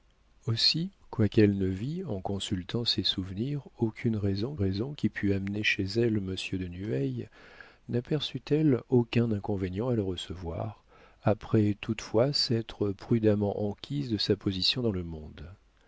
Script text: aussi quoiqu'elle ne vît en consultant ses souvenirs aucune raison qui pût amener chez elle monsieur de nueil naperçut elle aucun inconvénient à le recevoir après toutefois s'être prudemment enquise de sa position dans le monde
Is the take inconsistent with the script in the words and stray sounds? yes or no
yes